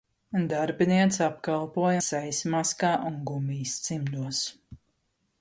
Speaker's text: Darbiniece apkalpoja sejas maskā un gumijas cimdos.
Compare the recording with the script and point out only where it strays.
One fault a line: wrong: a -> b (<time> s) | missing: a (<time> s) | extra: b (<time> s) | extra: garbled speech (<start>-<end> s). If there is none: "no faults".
no faults